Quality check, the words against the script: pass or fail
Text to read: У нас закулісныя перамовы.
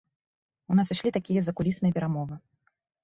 fail